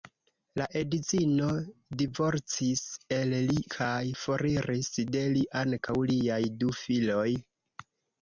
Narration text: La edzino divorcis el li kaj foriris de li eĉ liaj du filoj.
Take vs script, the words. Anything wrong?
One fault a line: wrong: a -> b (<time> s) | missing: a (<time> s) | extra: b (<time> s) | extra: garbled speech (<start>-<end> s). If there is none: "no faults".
wrong: eĉ -> ankaŭ (5.6 s)